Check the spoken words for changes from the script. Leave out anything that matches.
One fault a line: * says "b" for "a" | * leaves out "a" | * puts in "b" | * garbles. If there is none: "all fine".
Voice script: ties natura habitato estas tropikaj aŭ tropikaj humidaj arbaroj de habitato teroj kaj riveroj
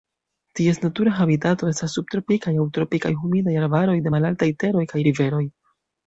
* says "subtropikaj" for "tropikaj"
* says "malaltaj" for "habitato"